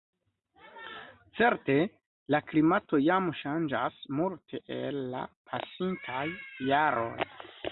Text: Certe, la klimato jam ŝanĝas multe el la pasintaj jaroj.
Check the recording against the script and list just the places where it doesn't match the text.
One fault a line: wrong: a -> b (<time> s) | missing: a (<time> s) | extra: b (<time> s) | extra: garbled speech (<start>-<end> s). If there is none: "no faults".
no faults